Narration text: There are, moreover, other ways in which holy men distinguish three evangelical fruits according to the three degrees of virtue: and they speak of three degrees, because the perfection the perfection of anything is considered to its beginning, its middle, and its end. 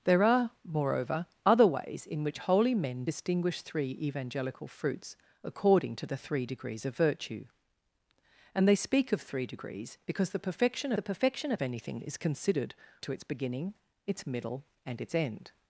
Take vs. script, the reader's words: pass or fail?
pass